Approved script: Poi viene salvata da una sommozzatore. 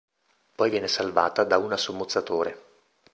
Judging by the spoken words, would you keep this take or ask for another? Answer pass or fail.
pass